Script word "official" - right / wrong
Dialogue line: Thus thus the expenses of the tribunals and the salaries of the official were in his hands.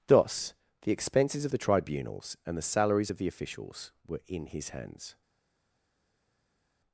wrong